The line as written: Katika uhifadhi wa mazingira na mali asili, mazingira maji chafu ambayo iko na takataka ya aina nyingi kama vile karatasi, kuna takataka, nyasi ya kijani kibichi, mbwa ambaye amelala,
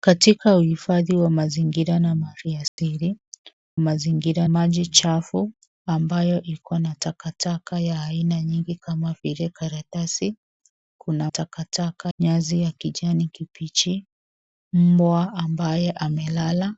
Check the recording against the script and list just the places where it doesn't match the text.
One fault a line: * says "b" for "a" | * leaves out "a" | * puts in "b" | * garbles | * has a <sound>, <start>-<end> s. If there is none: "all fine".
* has a dropout, 2.7-2.8 s